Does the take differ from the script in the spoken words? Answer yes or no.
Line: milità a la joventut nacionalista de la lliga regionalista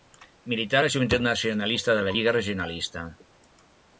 no